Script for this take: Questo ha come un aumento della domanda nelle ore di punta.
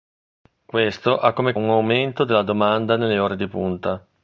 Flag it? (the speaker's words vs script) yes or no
no